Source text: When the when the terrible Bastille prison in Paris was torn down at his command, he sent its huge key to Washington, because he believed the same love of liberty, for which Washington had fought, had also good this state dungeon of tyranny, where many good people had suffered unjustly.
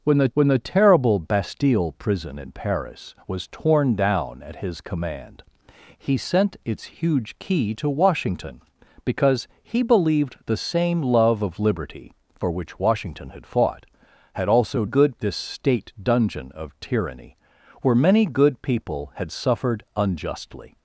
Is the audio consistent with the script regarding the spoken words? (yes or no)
yes